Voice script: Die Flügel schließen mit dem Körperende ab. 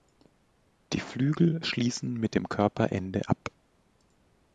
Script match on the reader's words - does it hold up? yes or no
yes